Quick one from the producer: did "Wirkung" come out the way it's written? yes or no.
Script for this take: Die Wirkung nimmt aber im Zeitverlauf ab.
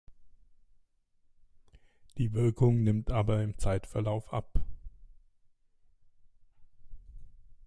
yes